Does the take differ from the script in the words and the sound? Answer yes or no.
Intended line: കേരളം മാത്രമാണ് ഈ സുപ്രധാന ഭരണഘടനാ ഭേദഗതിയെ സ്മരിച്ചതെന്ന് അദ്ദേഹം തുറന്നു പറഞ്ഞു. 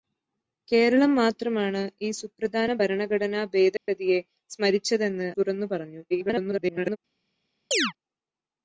yes